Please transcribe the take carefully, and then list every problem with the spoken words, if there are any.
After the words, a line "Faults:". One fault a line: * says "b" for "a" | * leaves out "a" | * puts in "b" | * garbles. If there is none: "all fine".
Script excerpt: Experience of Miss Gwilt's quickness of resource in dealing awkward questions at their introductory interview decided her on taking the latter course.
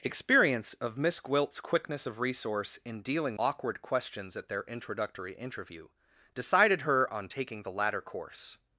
Experience of Miss Gwilt's quickness of resource in dealing awkward questions at their introductory interview decided her on taking the latter course.
Faults:
all fine